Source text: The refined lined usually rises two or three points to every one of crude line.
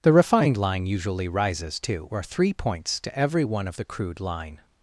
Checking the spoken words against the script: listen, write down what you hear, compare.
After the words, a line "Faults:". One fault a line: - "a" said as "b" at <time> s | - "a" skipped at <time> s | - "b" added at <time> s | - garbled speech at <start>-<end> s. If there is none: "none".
The refined line usually rises two or three points to every one of the crude line.
Faults:
- "lined" said as "line" at 0.6 s
- "the" added at 3.7 s